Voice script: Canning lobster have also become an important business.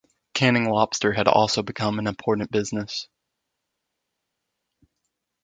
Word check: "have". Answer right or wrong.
wrong